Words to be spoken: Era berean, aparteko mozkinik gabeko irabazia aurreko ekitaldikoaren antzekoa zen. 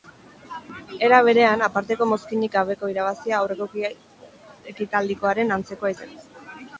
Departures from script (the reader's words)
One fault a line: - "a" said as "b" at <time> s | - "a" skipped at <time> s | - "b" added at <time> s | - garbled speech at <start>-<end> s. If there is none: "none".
none